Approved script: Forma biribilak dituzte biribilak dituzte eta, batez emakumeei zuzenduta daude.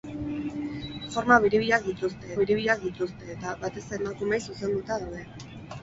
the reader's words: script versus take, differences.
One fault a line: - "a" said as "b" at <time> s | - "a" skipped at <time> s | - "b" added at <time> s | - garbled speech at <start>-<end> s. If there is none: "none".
none